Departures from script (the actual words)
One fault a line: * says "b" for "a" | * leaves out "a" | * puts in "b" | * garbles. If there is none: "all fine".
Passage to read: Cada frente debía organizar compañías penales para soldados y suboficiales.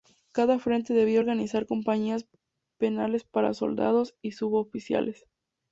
all fine